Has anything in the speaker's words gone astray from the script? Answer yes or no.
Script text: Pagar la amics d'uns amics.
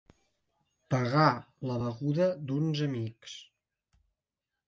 yes